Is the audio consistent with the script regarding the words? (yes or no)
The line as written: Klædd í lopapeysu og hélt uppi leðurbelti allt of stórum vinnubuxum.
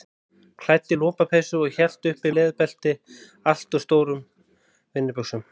yes